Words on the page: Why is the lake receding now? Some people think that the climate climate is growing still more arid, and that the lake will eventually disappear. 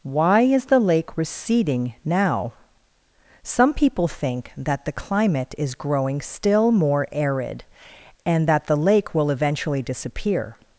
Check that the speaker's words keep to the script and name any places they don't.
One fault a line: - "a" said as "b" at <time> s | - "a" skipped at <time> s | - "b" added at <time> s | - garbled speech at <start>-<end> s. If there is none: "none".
- "climate" skipped at 5.5 s